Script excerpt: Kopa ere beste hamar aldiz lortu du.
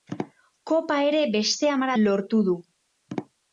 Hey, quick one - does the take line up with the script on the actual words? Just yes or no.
no